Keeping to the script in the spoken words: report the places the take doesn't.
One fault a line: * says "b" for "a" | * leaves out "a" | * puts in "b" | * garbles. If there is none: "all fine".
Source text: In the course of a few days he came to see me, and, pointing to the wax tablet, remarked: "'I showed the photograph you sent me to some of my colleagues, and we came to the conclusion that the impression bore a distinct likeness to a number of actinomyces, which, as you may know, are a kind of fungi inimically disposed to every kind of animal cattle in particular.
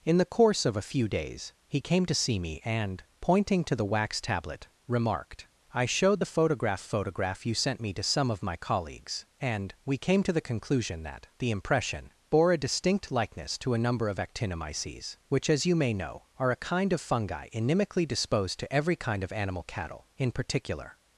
* puts in "photograph"